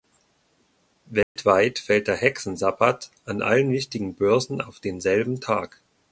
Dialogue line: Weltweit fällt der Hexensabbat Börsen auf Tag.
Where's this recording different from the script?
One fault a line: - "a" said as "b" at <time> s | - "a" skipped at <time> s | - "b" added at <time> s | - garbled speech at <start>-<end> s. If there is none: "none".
- "an allen wichtigen" added at 3.2 s
- "denselben" added at 4.8 s